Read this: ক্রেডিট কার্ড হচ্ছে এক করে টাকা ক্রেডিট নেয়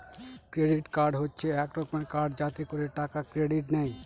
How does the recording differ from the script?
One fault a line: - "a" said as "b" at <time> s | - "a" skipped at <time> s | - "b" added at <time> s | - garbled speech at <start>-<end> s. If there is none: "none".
- "রকমের কার্ড যাতে" added at 1.8 s